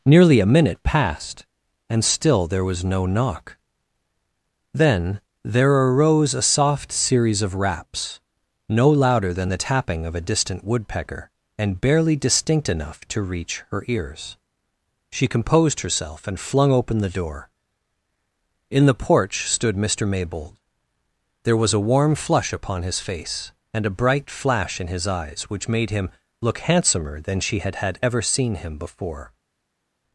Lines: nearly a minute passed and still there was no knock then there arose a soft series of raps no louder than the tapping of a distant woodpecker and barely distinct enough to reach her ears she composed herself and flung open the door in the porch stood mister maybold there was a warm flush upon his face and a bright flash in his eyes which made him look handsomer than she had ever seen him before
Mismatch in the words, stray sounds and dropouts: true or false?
true